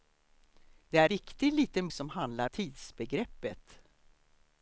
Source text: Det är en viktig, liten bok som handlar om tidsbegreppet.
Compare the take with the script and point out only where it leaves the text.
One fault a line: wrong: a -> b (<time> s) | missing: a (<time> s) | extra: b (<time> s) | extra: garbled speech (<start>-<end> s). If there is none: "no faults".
missing: en (1.1 s)
missing: bok (1.9 s)
missing: om (2.5 s)